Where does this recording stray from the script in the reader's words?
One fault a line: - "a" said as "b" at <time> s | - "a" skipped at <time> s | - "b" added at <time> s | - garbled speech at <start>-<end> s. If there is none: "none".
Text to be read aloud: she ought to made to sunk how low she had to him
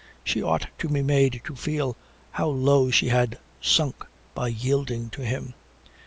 - "be" added at 0.9 s
- "sunk" said as "feel" at 1.6 s
- "sunk by yielding" added at 3.6 s